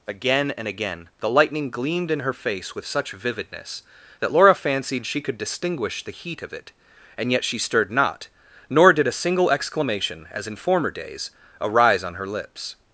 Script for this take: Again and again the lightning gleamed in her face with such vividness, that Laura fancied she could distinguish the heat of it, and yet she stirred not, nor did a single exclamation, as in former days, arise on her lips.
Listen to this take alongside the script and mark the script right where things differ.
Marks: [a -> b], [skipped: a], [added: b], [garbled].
Again and again the lightning gleamed in her face with such vividness, that Laura fancied she could distinguish the heat of it, and yet she stirred not, nor did a single exclamation, as in former days, arise on her lips.